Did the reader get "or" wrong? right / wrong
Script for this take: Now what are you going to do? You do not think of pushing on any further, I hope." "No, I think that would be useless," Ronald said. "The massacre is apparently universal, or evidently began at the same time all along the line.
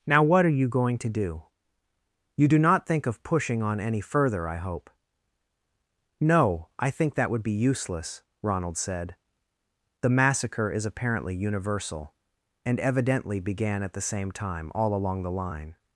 wrong